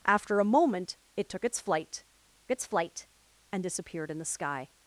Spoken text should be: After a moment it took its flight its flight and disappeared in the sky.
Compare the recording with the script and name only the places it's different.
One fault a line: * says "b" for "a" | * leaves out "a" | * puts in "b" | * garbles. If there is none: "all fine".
all fine